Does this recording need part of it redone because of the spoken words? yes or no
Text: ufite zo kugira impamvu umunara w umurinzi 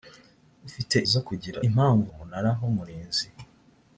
no